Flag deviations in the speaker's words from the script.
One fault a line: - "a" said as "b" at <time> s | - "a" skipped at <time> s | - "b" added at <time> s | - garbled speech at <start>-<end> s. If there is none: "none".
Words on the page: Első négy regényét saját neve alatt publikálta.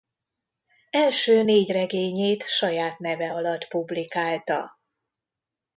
none